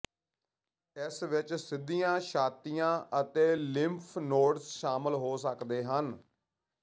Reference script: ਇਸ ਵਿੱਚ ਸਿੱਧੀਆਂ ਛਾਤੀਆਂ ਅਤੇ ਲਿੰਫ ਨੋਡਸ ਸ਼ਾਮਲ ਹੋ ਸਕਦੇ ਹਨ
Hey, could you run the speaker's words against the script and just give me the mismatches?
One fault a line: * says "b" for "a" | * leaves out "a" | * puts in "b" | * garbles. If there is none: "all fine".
all fine